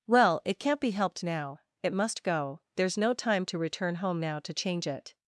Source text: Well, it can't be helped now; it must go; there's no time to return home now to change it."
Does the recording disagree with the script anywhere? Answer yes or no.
no